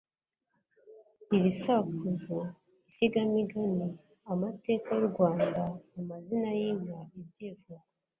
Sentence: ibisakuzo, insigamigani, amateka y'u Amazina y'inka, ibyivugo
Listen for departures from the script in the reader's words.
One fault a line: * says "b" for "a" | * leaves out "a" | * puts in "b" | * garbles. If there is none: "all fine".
* puts in "Rwanda"